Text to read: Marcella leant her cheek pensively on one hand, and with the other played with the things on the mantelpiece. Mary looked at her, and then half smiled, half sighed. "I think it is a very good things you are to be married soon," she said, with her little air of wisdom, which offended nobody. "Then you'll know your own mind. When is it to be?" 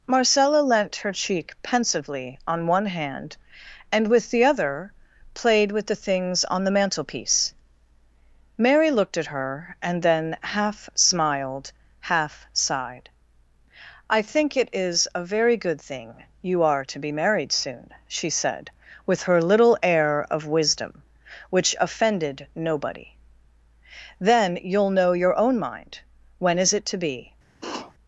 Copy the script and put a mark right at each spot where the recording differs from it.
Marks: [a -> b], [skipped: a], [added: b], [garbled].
Marcella leant her cheek pensively on one hand, and with the other played with the things on the mantelpiece. Mary looked at her, and then half smiled, half sighed. "I think it is a very good [things -> thing] you are to be married soon," she said, with her little air of wisdom, which offended nobody. "Then you'll know your own mind. When is it to be?"